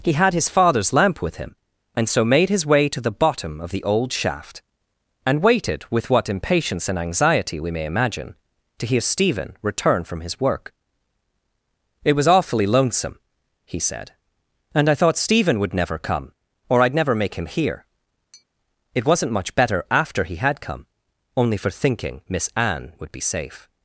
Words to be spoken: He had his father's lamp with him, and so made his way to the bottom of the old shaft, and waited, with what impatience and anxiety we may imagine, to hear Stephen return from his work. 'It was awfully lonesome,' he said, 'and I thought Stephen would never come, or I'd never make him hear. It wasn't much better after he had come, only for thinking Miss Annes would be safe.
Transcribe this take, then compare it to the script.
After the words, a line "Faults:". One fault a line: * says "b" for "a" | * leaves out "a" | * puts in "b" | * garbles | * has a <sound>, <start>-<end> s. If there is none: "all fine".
He had his father's lamp with him, and so made his way to the bottom of the old shaft, and waited, with what impatience and anxiety we may imagine, to hear Stephen return from his work. 'It was awfully lonesome,' he said, 'and I thought Stephen would never come, or I'd never make him hear. It wasn't much better after he had come, only for thinking Miss Anne would be safe.
Faults:
* has a tap, 18.3-18.5 s
* says "Anne" for "Annes"